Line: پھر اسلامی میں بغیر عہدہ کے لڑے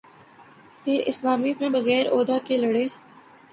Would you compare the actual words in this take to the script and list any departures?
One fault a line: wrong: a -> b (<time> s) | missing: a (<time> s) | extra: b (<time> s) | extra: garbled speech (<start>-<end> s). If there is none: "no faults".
no faults